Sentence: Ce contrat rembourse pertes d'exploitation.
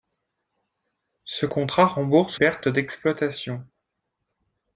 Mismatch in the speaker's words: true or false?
false